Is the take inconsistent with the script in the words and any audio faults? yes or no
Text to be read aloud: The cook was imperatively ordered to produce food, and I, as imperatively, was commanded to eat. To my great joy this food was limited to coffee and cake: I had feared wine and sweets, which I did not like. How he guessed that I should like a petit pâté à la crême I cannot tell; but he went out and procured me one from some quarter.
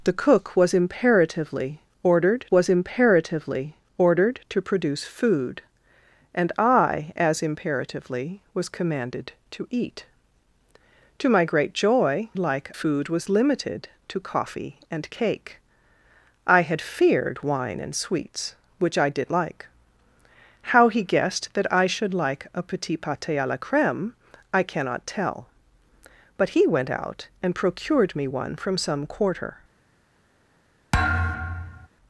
yes